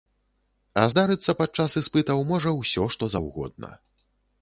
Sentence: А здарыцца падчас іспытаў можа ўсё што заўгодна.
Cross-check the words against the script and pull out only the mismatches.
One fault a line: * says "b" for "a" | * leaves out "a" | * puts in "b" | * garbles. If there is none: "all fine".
all fine